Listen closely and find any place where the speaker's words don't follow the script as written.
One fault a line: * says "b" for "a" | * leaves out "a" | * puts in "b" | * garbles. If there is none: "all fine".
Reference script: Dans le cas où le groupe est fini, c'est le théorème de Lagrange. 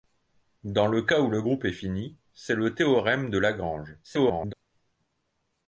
* garbles